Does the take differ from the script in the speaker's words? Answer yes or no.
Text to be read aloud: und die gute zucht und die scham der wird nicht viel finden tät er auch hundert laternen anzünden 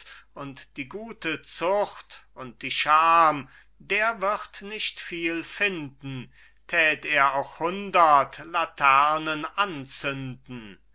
no